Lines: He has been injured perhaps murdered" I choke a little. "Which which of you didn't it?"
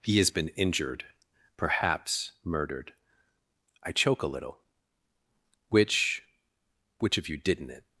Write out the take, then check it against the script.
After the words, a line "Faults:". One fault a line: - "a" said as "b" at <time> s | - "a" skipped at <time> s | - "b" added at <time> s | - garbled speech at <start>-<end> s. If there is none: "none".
He has been injured perhaps murdered" I choke a little. "Which which of you didn't it?"
Faults:
none